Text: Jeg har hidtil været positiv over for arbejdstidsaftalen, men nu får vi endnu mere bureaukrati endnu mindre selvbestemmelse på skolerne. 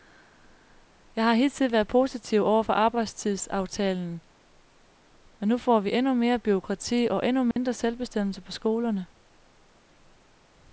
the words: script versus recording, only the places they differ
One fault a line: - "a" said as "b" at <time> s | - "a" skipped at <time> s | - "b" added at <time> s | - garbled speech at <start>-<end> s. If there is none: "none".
- "og" added at 7.1 s